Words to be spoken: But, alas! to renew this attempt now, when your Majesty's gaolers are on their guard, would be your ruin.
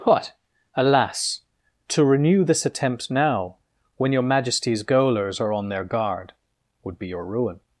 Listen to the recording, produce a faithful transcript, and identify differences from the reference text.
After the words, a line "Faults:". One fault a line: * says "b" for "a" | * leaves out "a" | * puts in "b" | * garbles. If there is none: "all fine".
But, alas! to renew this attempt now, when your Majesty's gaolers are on their guard, would be your ruin.
Faults:
all fine